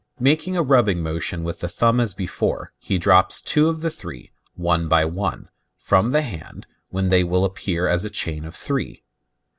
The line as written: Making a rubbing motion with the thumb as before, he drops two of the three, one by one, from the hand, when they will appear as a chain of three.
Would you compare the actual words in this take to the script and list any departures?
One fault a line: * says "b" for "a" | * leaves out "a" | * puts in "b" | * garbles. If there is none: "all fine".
all fine